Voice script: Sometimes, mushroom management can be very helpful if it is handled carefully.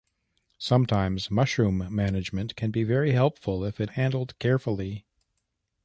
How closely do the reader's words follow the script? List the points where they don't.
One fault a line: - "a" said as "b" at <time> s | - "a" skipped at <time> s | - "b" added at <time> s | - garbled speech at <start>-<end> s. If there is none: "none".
- "is" skipped at 3.9 s